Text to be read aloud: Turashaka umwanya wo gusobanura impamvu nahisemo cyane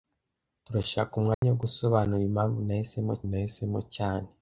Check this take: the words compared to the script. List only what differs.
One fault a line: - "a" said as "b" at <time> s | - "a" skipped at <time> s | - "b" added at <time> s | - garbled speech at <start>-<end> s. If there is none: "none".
- "nahisemo" added at 3.3 s